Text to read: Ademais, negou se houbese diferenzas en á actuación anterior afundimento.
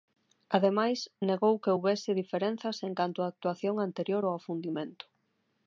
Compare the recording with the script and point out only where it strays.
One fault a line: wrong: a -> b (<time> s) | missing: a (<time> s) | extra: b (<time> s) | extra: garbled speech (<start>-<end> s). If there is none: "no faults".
wrong: se -> que (1.6 s)
extra: canto (3.0 s)
extra: ao (4.2 s)